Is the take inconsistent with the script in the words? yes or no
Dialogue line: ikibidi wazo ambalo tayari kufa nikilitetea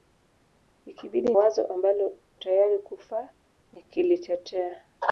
no